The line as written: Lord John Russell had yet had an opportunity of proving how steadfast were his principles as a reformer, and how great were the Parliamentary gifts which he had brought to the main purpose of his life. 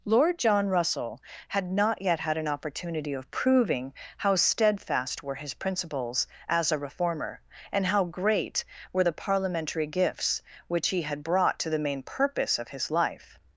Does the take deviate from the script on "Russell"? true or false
false